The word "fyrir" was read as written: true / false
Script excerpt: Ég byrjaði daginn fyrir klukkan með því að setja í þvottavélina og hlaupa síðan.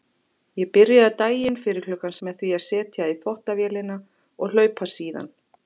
true